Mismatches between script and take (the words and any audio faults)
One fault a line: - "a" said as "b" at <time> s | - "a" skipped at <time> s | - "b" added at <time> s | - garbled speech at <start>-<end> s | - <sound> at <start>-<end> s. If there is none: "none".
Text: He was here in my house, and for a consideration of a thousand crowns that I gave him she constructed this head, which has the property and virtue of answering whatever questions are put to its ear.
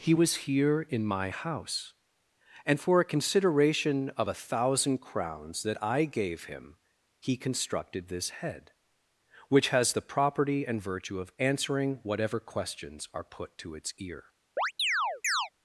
- "she" said as "he" at 7.2 s
- chirp at 14.6-15.5 s